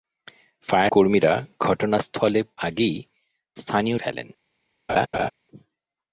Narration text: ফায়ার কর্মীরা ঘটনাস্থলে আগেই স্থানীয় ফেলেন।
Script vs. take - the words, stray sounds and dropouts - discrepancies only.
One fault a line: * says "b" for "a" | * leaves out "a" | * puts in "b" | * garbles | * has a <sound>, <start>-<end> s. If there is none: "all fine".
* has a laugh, 4.9-5.3 s